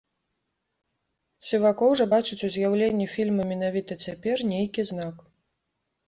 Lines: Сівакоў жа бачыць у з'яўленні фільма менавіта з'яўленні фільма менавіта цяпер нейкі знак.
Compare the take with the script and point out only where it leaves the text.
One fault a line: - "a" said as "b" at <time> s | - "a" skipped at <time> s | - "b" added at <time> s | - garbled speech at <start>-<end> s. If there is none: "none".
- "з'яўленні фільма менавіта" skipped at 3.9 s